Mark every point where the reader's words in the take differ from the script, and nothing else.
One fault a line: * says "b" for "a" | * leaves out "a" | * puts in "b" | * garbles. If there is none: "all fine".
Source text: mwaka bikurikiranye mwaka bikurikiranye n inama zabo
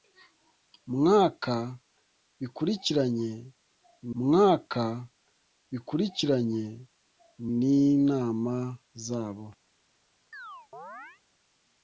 all fine